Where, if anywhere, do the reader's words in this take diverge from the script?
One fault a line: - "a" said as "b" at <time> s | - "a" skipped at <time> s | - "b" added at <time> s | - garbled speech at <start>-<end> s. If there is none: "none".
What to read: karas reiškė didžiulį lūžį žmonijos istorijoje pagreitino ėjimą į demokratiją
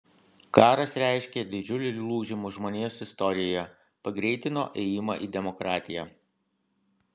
none